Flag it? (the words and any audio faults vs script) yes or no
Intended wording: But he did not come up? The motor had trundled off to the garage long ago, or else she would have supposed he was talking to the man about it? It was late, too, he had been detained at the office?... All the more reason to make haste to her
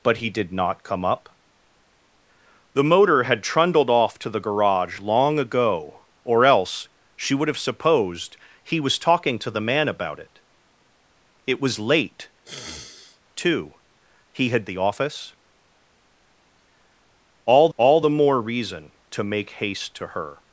yes